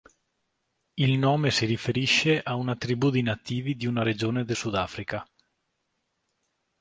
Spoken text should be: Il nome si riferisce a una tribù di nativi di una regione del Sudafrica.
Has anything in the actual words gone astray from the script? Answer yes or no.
no